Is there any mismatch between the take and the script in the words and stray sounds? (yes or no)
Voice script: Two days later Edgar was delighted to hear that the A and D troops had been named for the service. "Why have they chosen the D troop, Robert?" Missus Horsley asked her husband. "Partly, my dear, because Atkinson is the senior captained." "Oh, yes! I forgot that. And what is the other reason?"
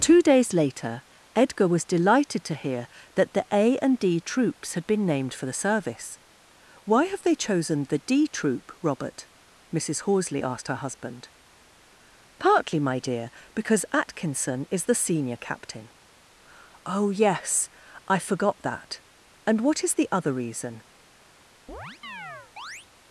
yes